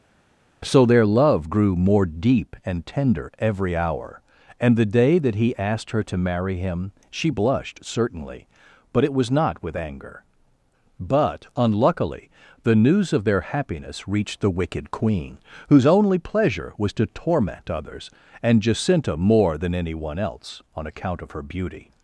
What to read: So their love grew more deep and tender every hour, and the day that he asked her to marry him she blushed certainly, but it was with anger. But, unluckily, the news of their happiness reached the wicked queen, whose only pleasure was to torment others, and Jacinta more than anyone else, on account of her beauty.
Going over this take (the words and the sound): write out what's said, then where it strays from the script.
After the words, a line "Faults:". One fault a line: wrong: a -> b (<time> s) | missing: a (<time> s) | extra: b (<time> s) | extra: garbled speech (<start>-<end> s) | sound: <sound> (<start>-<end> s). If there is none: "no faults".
So their love grew more deep and tender every hour, and the day that he asked her to marry him she blushed certainly, but it was not with anger. But, unluckily, the news of their happiness reached the wicked queen, whose only pleasure was to torment others, and Jacinta more than anyone else, on account of her beauty.
Faults:
extra: not (9.3 s)